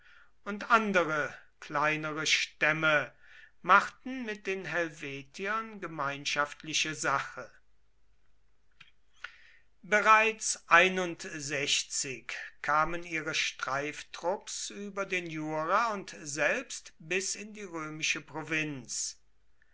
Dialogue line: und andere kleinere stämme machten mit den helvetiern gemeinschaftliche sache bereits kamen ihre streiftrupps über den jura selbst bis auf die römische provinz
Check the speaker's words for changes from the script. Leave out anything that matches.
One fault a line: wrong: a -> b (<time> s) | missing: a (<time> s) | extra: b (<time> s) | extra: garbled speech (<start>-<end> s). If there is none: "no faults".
extra: und (15.9 s)
wrong: auf -> in (17.3 s)